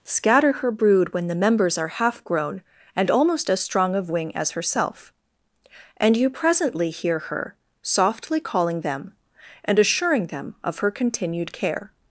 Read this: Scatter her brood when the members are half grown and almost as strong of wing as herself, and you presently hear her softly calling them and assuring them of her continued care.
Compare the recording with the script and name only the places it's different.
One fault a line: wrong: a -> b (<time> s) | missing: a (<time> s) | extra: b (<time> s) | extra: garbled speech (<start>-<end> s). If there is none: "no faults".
no faults